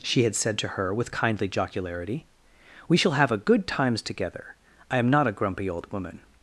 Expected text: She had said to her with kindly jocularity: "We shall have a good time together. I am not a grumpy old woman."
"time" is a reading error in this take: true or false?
true